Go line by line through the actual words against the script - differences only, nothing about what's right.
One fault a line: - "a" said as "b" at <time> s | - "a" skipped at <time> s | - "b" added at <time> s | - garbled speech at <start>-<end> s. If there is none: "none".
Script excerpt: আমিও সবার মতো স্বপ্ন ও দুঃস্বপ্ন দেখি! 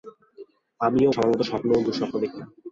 none